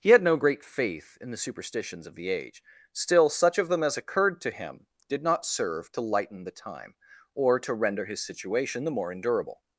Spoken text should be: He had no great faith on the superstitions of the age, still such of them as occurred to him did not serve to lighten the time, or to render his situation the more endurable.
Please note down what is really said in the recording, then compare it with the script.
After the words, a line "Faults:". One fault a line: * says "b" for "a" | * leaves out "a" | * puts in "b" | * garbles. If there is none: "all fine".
He had no great faith in the superstitions of the age, still such of them as occurred to him did not serve to lighten the time, or to render his situation the more endurable.
Faults:
* says "in" for "on"